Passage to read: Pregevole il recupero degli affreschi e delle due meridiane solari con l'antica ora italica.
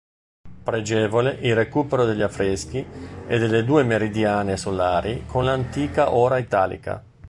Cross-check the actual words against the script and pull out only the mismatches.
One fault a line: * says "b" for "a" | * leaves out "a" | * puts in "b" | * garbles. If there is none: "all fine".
all fine